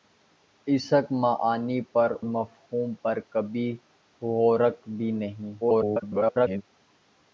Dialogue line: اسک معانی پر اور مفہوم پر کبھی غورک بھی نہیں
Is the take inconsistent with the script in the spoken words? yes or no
yes